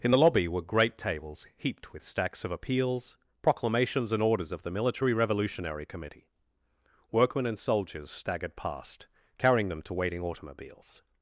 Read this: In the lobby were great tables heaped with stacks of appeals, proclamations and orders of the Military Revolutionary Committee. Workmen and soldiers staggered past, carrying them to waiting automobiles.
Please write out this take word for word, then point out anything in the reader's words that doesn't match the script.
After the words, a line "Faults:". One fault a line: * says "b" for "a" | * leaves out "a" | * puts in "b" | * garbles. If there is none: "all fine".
In the lobby were great tables heaped with stacks of appeals, proclamations and orders of the Military Revolutionary Committee. Workmen and soldiers staggered past, carrying them to waiting automobiles.
Faults:
all fine